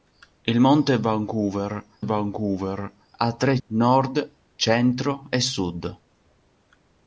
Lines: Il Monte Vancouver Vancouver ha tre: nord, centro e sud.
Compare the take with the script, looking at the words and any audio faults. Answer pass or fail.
pass